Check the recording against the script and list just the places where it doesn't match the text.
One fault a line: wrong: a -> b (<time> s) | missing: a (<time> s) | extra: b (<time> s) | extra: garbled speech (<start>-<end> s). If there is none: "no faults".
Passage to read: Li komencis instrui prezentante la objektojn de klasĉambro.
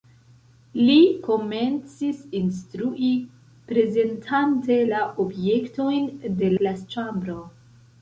no faults